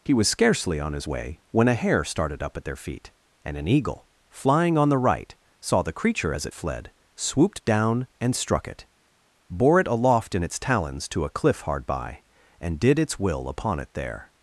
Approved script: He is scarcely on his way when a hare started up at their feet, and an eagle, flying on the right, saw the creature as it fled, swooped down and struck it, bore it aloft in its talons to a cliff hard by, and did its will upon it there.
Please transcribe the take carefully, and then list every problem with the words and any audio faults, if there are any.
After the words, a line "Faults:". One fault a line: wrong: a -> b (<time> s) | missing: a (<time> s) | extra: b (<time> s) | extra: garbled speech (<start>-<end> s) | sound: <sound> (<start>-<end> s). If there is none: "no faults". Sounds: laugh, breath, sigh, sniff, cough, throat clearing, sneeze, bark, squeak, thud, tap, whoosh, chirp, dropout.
He was scarcely on his way when a hare started up at their feet, and an eagle, flying on the right, saw the creature as it fled, swooped down and struck it, bore it aloft in its talons to a cliff hard by, and did its will upon it there.
Faults:
wrong: is -> was (0.1 s)